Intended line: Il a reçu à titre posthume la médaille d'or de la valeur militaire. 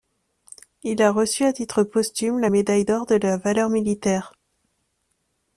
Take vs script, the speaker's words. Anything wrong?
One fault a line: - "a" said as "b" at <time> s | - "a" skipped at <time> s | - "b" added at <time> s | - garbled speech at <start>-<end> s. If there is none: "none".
none